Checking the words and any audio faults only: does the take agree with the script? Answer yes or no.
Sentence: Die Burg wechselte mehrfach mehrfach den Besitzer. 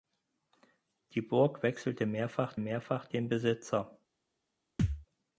no